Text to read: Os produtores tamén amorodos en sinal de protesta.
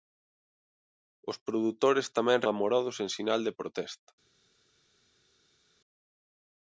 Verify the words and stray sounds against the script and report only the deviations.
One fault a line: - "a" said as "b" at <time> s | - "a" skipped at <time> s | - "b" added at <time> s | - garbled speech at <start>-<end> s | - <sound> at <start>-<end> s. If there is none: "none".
none